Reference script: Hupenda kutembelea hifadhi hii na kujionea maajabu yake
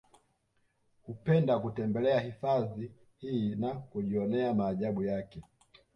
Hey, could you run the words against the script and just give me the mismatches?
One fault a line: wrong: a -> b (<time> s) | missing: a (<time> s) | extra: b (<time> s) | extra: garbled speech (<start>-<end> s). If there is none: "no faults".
no faults